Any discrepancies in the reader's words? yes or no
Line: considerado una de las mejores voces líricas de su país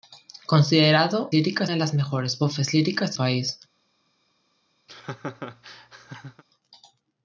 yes